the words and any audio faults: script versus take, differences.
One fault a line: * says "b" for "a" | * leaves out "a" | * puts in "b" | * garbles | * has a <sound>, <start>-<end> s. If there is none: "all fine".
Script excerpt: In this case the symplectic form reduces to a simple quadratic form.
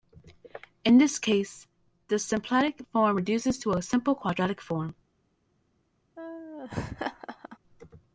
* has a laugh, 6.2-7.6 s